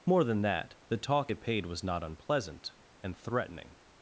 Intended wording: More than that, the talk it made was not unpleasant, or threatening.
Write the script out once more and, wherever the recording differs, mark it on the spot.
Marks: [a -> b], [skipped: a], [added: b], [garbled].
More than that, the talk it [made -> paid] was not unpleasant, [or -> and] threatening.